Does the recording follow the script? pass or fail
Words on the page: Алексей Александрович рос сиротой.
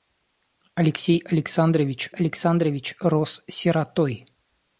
fail